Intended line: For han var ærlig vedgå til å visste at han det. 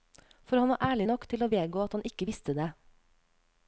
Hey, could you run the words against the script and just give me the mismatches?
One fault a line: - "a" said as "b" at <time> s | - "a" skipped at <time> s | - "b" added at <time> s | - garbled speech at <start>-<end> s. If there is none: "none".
- "vedgå" said as "nok" at 1.1 s
- "visste" said as "vedgå" at 1.5 s
- "ikke visste" added at 2.1 s